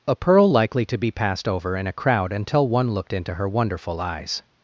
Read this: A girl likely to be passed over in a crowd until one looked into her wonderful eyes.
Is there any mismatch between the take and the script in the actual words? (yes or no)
yes